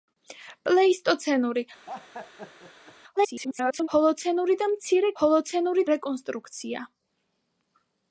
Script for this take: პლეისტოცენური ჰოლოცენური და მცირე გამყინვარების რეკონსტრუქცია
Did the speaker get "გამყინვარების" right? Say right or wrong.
wrong